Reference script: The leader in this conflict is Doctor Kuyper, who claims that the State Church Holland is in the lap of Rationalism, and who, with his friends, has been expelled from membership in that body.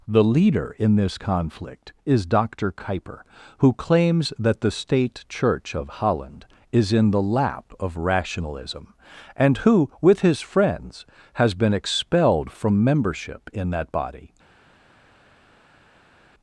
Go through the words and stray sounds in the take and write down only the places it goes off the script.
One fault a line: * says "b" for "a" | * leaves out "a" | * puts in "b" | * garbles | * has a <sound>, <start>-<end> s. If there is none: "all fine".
* puts in "of"